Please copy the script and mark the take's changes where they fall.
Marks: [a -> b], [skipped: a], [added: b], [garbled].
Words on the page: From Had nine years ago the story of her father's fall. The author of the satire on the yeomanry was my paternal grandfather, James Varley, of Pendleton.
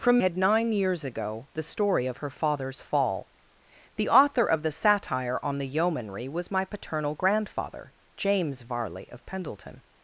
From Had nine years ago the story of her father's fall. The author of the satire on the yeomanry was my paternal grandfather, James Varley, of Pendleton.